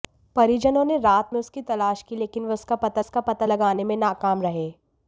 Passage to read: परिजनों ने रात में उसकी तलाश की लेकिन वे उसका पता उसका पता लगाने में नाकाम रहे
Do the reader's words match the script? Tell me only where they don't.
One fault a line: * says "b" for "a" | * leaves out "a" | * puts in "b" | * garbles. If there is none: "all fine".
all fine